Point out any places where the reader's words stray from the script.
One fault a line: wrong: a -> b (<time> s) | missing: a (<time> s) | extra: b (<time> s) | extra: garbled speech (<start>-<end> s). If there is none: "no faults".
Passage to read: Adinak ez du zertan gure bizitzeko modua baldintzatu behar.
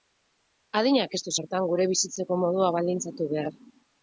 no faults